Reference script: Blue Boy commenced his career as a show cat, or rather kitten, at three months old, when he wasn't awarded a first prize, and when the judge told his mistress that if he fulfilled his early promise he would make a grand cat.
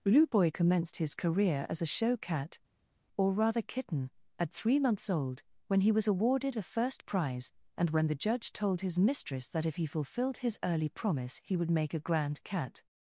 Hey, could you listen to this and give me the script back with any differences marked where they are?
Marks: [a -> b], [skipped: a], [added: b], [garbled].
Blue Boy commenced his career as a show cat, or rather kitten, at three months old, when he [wasn't -> was] awarded a first prize, and when the judge told his mistress that if he fulfilled his early promise he would make a grand cat.